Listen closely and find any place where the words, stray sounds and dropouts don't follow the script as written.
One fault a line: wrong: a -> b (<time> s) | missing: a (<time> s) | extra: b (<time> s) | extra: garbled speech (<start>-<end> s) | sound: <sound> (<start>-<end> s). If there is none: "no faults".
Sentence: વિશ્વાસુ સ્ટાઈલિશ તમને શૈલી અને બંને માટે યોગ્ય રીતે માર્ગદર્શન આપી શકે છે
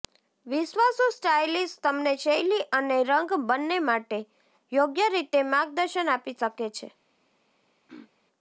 extra: રંગ (3.0 s)
sound: throat clearing (7.9-8.1 s)